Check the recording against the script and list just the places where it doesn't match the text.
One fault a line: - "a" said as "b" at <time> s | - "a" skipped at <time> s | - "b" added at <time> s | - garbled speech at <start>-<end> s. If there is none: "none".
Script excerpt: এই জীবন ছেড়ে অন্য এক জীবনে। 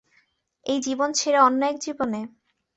none